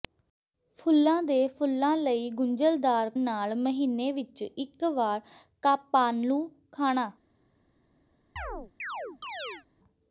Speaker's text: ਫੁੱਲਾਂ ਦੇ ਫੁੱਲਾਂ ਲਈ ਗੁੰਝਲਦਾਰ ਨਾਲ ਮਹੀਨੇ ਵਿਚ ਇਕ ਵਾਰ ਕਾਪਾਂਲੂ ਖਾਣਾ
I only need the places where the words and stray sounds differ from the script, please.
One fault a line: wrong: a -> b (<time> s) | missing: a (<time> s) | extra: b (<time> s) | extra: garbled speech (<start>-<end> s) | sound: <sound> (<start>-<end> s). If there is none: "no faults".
sound: chirp (8.4-9.7 s)